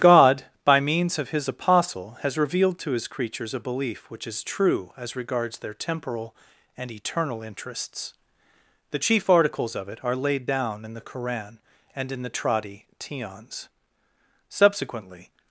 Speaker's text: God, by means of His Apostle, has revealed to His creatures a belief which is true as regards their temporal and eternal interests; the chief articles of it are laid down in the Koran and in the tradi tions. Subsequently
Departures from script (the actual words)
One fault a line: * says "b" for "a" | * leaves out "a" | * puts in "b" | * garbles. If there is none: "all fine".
all fine